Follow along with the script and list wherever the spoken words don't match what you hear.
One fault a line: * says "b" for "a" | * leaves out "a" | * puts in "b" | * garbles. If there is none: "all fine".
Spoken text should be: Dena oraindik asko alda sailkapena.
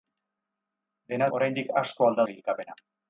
all fine